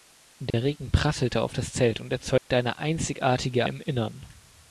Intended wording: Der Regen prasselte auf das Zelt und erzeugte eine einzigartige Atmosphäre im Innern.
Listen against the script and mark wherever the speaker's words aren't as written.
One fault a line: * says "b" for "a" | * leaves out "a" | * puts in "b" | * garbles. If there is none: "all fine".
* leaves out "Atmosphäre"